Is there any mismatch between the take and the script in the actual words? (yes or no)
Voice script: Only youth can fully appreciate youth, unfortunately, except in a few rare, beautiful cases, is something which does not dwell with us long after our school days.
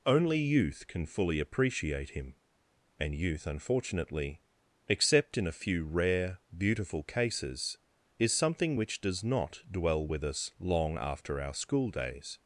yes